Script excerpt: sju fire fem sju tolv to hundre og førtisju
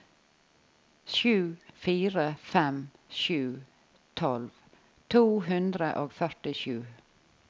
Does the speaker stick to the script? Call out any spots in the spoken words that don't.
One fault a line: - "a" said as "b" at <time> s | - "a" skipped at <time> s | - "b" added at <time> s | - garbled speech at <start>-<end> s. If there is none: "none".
none